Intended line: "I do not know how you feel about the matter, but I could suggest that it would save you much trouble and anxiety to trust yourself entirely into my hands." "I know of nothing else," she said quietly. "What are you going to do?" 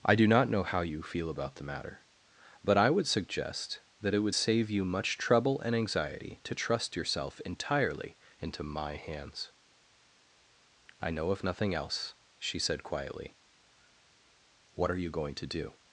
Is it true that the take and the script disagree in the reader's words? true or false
true